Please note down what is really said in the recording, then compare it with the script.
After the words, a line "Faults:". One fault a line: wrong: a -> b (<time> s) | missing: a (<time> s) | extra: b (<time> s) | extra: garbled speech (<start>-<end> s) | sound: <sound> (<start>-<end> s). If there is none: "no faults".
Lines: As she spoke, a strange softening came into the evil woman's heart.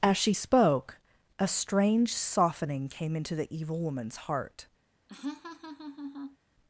As she spoke, a strange softening came into the evil woman's heart.
Faults:
sound: laugh (5.1-6.4 s)